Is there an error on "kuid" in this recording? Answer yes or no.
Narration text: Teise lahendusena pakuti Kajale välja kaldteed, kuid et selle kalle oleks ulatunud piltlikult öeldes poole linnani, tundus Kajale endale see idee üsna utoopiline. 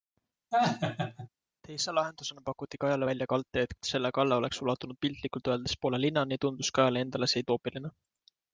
yes